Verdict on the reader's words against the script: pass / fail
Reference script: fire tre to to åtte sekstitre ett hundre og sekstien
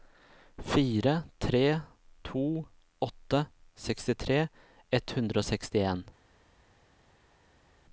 fail